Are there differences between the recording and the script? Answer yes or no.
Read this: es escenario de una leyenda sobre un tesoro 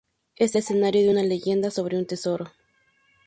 no